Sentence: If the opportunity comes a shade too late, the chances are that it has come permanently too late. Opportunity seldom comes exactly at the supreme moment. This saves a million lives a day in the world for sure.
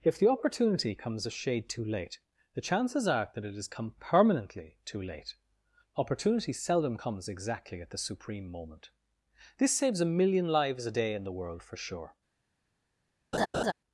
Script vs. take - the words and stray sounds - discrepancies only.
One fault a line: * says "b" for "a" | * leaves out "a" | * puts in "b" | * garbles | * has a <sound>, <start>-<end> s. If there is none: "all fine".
* has a laugh, 13.3-13.7 s